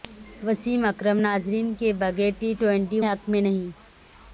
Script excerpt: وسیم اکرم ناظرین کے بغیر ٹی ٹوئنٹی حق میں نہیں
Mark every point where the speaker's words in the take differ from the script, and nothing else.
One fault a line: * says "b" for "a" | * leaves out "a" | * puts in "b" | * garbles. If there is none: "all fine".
all fine